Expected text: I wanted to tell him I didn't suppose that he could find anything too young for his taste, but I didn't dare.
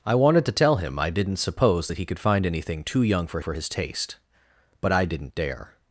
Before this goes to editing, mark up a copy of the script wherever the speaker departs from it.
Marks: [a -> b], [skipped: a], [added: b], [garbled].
I wanted to tell him I didn't suppose that he could find anything too young for [added: for] his taste, but I didn't dare.